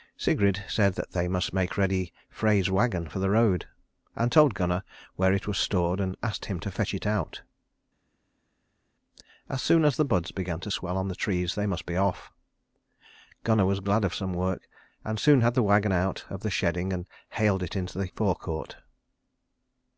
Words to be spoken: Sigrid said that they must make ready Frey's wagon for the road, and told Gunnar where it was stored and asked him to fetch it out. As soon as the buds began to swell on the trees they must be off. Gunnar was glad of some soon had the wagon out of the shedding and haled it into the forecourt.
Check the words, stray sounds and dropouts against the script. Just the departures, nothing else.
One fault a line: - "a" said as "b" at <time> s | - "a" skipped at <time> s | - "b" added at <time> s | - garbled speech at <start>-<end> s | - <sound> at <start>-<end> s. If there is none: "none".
- "work and" added at 14.3 s